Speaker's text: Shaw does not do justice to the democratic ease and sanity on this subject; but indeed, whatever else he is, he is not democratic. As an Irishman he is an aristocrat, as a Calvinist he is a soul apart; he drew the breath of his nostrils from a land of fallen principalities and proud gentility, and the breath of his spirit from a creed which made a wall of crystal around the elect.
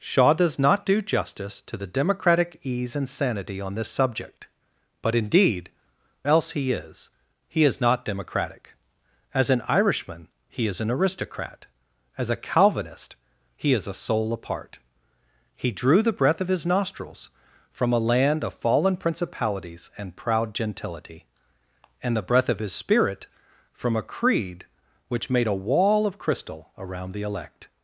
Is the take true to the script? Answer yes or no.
no